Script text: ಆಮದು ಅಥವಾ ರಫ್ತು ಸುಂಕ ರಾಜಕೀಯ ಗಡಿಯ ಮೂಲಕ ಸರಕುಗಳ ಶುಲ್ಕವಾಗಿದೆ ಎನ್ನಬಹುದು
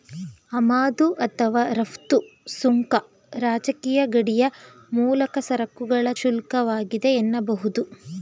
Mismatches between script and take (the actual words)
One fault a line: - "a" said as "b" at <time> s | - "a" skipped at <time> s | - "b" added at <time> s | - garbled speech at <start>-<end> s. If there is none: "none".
none